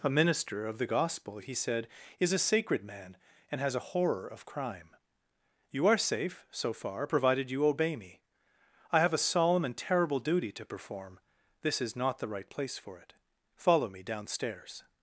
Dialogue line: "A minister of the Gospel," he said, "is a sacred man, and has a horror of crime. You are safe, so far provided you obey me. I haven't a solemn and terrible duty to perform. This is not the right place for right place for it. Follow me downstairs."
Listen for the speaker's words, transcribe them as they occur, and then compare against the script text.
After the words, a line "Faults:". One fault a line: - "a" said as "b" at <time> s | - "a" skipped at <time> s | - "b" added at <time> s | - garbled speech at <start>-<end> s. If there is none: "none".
"A minister of the Gospel," he said, "is a sacred man, and has a horror of crime. You are safe, so far provided you obey me. I have a solemn and terrible duty to perform. This is not the right place for it. Follow me downstairs."
Faults:
- "haven't" said as "have" at 9.0 s
- "right place for" skipped at 13.0 s